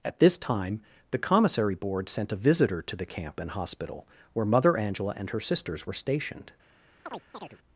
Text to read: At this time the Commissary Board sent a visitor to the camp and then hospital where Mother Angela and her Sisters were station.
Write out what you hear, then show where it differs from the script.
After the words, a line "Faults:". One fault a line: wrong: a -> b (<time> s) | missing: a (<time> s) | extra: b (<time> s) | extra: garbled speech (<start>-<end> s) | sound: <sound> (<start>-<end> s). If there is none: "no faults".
At this time the Commissary Board sent a visitor to the camp and hospital where Mother Angela and her Sisters were stationed.
Faults:
missing: then (3.5 s)
wrong: station -> stationed (5.9 s)
sound: chirp (7.1-7.6 s)